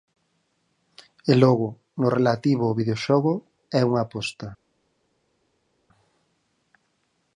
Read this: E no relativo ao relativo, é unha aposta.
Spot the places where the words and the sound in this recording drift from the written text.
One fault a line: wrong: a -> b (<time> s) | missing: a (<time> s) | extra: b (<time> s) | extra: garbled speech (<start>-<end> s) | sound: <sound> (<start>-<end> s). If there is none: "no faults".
extra: logo (1.4 s)
wrong: relativo -> videoxogo (2.8 s)